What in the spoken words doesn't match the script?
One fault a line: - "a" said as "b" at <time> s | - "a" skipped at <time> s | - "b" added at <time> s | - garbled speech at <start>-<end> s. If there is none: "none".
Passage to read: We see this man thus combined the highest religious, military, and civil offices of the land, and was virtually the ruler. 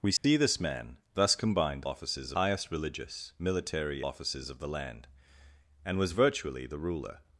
- "the" said as "offices" at 1.8 s
- "and civil" skipped at 4.0 s